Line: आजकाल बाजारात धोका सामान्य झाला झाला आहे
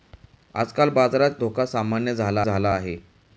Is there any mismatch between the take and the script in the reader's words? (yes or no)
no